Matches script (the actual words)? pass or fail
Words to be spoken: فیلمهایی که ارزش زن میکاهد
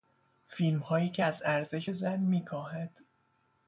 fail